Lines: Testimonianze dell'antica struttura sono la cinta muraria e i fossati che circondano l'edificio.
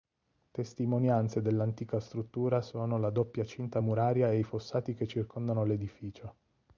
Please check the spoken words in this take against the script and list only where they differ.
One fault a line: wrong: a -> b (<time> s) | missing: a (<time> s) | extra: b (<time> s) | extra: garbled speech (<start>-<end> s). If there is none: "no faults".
extra: doppia (3.1 s)